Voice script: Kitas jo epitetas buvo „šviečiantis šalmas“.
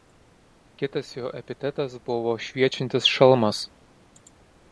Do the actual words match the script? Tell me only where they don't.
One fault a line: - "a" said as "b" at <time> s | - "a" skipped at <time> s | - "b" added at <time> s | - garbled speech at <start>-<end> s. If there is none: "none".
none